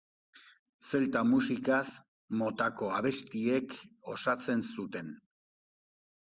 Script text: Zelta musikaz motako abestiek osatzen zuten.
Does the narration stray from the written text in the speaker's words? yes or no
no